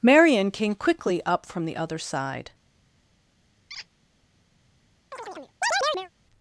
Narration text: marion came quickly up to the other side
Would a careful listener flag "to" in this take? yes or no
yes